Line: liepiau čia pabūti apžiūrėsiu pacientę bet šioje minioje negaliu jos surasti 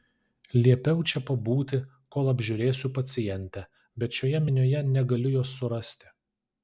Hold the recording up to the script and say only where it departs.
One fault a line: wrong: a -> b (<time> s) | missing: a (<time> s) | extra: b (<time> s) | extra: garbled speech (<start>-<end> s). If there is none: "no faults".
extra: kol (2.1 s)